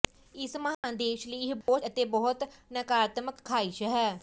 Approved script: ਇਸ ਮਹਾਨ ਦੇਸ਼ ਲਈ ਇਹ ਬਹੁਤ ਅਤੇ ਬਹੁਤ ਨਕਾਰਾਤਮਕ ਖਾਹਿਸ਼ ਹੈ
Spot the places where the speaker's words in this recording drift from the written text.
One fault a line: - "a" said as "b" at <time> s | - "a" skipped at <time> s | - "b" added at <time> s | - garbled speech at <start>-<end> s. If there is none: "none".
none